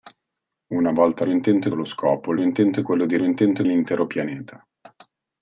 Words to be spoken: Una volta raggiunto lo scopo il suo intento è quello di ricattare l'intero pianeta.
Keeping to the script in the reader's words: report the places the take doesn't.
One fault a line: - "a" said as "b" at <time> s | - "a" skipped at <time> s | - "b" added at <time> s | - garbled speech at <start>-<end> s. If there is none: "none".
- "raggiunto" said as "intento" at 1.3 s
- "suo" skipped at 2.4 s
- "ricattare" said as "intento" at 3.2 s